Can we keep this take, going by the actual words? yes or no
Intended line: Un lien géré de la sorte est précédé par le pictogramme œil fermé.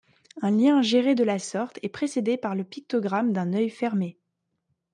no